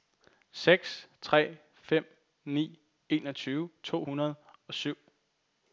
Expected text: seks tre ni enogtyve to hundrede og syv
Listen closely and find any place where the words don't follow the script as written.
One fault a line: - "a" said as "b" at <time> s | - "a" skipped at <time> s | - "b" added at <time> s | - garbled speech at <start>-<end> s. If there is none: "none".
- "fem" added at 1.7 s